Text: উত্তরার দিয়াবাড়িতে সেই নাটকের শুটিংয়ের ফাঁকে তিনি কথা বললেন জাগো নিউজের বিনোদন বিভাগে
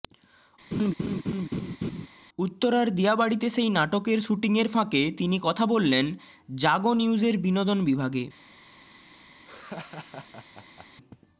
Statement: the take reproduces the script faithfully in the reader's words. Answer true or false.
true